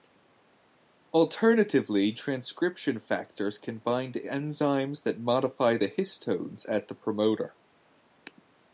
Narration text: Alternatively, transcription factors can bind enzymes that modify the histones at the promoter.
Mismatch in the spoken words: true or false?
false